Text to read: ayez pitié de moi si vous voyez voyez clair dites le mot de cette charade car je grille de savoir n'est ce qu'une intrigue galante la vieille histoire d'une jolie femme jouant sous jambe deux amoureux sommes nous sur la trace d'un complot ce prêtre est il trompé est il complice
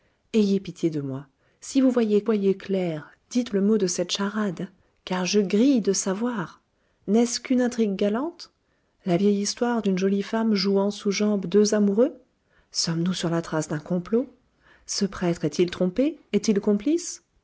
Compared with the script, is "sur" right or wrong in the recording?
right